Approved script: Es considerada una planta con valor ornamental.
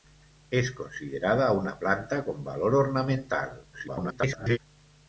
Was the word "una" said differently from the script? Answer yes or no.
no